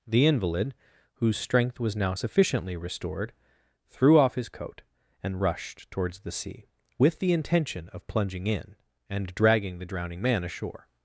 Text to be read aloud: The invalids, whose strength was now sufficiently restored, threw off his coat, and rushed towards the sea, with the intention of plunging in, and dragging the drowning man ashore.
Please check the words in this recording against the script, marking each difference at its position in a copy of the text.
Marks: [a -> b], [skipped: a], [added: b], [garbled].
The [invalids, -> invalid] whose strength was now sufficiently restored, threw off his coat, and rushed towards the sea, with the intention of plunging in, and dragging the drowning man ashore.